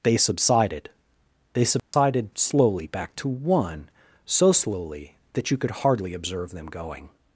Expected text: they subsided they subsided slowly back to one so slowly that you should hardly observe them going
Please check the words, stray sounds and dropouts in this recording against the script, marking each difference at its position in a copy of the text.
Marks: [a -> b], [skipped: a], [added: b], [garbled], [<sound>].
they subsided they subsided [dropout] slowly back to one so slowly that you [should -> could] hardly observe them going